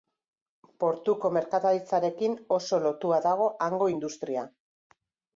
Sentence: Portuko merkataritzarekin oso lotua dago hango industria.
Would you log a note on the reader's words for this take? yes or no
no